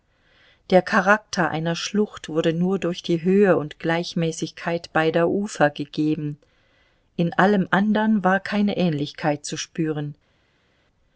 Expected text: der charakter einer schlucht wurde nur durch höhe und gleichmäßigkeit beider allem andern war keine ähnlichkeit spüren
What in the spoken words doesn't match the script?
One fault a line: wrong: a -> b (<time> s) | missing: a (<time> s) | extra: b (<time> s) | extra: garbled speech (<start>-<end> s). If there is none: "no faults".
extra: die (3.0 s)
extra: ufer gegeben in (5.3 s)
extra: zu (9.4 s)